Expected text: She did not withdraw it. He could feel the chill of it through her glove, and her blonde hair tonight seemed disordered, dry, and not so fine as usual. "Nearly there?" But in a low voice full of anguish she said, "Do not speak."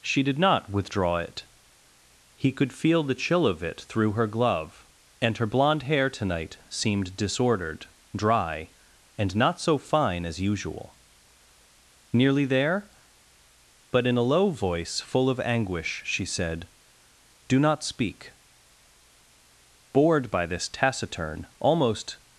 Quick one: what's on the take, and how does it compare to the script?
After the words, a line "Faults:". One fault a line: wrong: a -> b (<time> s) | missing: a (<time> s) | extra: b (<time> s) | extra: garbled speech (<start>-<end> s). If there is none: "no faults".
She did not withdraw it. He could feel the chill of it through her glove, and her blonde hair tonight seemed disordered, dry, and not so fine as usual. "Nearly there?" But in a low voice full of anguish she said, "Do not speak." Bored by this taciturn, almost
Faults:
extra: Bored by this taciturn almost (19.9 s)